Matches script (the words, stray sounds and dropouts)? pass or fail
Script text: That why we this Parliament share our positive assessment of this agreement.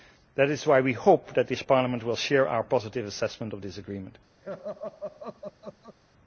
fail